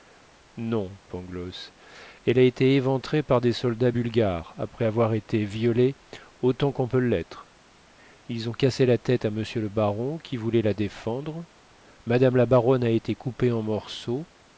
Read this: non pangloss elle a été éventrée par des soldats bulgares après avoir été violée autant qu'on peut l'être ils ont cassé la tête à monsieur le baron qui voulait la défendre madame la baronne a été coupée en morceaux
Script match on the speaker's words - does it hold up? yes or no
yes